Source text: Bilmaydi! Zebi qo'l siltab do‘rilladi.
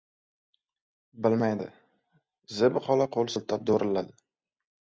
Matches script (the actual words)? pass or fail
fail